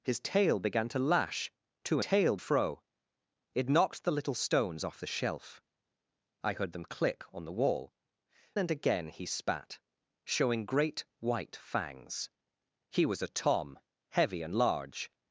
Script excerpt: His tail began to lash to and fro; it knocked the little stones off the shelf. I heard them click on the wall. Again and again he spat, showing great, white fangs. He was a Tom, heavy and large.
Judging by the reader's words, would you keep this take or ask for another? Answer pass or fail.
fail